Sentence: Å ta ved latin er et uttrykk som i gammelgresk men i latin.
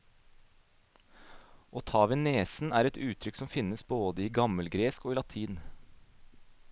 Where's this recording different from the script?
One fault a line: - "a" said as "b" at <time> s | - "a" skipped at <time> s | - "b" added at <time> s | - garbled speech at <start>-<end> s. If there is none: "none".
- "latin" said as "nesen" at 2.2 s
- "finnes både" added at 3.5 s
- "men" said as "og" at 5.0 s